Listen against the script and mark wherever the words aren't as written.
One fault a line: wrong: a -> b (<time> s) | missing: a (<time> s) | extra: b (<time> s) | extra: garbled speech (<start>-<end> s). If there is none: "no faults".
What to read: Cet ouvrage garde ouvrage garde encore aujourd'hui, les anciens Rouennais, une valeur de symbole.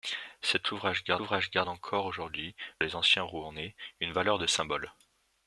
no faults